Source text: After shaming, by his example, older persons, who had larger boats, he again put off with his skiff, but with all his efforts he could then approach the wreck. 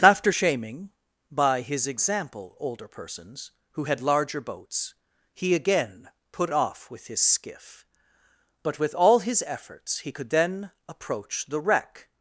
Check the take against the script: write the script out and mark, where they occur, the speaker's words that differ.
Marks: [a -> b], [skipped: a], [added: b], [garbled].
After shaming, by his example, older persons, who had larger boats, he again put off with his skiff, but with all his efforts he could then approach the wreck.